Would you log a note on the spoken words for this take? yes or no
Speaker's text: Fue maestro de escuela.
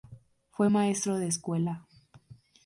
no